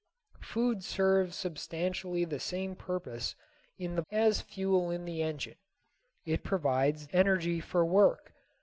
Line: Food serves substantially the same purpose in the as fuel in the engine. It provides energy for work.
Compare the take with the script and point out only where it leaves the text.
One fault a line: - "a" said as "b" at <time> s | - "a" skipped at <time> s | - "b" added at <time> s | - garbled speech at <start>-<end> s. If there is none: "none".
none